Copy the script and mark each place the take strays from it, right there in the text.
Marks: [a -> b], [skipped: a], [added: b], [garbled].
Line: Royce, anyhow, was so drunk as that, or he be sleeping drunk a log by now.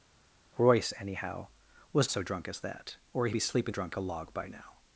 Royce, anyhow, was so drunk as that, or he be sleeping drunk a log by now.